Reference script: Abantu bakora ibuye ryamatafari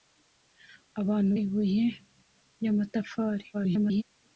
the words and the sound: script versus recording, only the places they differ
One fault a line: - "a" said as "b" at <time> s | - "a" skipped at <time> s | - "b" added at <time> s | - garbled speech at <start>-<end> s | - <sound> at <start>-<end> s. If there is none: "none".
- "bakora" skipped at 1.3 s
- garbled speech at 3.5-4.0 s